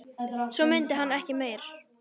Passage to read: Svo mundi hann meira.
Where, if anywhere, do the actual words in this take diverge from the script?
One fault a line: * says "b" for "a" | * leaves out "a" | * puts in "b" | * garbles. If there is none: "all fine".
* puts in "ekki"